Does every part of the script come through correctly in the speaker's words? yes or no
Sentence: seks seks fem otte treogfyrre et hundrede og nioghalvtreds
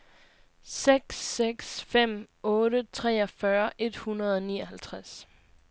yes